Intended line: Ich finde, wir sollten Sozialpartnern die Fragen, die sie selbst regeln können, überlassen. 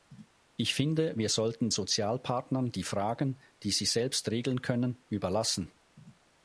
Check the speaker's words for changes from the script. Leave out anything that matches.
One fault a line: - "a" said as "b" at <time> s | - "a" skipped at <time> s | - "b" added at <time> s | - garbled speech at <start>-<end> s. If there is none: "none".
none